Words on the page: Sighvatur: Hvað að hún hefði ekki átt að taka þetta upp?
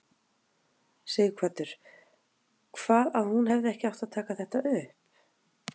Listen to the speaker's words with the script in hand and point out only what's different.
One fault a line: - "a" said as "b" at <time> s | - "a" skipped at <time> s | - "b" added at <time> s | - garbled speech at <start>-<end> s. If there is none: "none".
none